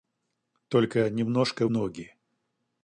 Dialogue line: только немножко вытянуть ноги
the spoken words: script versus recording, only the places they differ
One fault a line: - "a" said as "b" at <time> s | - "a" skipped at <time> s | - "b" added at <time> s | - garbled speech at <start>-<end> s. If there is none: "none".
- "вытянуть" skipped at 1.7 s